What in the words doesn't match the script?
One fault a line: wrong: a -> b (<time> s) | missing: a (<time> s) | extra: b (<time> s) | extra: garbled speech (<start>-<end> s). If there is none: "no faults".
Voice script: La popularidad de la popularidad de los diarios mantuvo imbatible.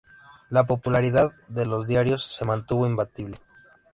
missing: la popularidad de (1.6 s)
extra: se (2.2 s)